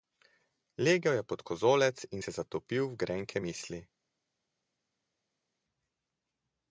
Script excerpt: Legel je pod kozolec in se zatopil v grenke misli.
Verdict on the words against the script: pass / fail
pass